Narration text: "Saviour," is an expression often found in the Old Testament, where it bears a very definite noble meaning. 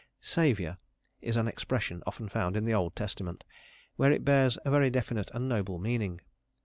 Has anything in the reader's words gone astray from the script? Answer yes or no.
yes